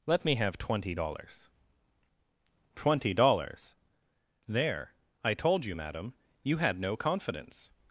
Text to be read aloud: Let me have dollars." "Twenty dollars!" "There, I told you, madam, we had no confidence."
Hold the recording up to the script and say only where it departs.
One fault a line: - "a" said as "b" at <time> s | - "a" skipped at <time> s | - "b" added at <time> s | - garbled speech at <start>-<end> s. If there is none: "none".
- "twenty" added at 0.6 s
- "we" said as "you" at 6.4 s